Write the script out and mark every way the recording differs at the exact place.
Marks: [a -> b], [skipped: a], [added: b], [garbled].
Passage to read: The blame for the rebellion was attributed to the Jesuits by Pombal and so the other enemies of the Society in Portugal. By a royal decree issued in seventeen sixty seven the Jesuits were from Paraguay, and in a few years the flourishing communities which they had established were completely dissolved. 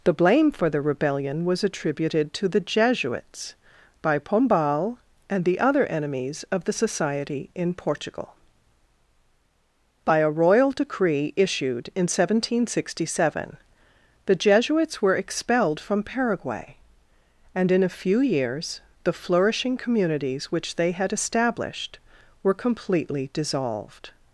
The blame for the rebellion was attributed to the Jesuits by Pombal and [skipped: so] the other enemies of the Society in Portugal. By a royal decree issued in seventeen sixty seven the Jesuits were [added: expelled] from Paraguay, and in a few years the flourishing communities which they had established were completely dissolved.